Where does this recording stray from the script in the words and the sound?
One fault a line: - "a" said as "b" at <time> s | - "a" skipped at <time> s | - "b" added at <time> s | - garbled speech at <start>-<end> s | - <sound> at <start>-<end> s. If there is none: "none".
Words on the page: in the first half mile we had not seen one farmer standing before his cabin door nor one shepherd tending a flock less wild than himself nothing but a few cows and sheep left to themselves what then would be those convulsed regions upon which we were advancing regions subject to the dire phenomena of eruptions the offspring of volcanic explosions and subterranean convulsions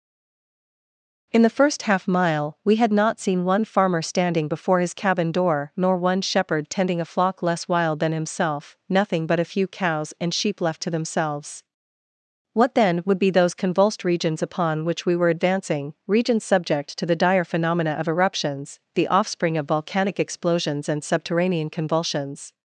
none